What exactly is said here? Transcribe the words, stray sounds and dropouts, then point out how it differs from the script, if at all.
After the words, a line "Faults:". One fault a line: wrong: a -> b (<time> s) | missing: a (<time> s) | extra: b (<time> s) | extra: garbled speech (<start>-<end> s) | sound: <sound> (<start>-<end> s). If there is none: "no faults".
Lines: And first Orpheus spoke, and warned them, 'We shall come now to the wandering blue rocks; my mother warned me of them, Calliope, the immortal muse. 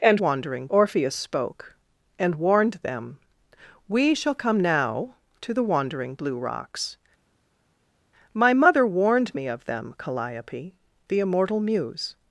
And wandering Orpheus spoke, and warned them, 'We shall come now to the wandering blue rocks; my mother warned me of them, Calliope, the immortal muse.
Faults:
wrong: first -> wandering (0.2 s)